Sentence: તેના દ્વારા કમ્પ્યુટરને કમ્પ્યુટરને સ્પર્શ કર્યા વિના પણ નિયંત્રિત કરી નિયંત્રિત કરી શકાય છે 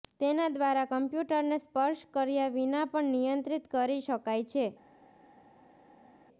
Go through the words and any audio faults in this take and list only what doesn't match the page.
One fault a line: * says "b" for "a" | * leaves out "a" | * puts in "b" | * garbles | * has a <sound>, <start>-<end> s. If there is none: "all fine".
* leaves out "કમ્પ્યુટરને"
* leaves out "નિયંત્રિત કરી"